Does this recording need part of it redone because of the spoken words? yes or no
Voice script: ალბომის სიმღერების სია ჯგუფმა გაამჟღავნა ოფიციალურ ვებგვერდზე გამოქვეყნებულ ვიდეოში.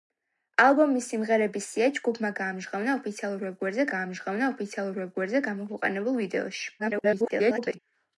yes